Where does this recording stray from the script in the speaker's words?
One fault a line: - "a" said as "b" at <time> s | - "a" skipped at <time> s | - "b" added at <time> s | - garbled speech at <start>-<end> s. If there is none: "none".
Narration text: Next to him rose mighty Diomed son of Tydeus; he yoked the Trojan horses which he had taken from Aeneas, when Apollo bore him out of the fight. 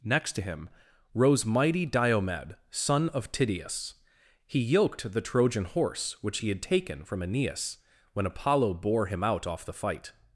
- "horses" said as "horse" at 5.7 s
- "of" said as "off" at 9.4 s